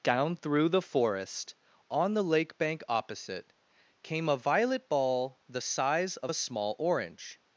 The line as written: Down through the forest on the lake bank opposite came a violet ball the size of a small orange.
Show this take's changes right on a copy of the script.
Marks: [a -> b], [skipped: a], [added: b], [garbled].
Down through the forest on the lake bank opposite came a violet ball the size of a small orange.